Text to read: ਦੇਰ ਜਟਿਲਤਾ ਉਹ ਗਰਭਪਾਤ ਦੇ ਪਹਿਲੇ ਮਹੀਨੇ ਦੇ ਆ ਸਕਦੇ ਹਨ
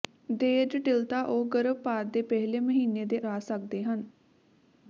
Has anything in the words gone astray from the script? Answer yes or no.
no